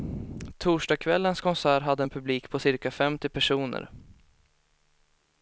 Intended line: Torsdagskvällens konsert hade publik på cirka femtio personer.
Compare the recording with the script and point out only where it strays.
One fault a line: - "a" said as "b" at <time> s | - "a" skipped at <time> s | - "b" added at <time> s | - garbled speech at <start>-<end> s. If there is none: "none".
- "en" added at 2.0 s